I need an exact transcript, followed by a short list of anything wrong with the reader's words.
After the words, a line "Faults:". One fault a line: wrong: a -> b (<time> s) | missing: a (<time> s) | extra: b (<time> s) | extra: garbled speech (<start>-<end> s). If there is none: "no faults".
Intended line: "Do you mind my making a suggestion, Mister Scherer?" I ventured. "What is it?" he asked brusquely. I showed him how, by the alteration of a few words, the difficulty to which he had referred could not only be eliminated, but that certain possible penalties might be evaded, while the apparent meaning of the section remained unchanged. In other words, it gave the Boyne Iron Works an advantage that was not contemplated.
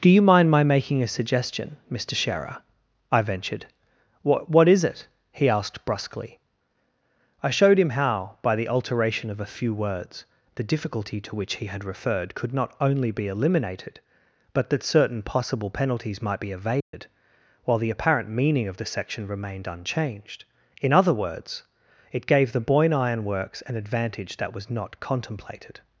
"Do you mind my making a suggestion, Mister Scherer?" I ventured. "What What is it?" he asked brusquely. I showed him how, by the alteration of a few words, the difficulty to which he had referred could not only be eliminated, but that certain possible penalties might be evaded, while the apparent meaning of the section remained unchanged. In other words, it gave the Boyne Iron Works an advantage that was not contemplated.
Faults:
extra: What (4.5 s)